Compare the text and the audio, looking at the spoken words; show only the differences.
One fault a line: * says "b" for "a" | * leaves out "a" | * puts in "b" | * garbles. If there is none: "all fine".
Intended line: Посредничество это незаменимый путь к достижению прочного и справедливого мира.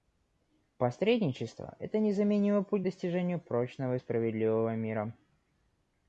all fine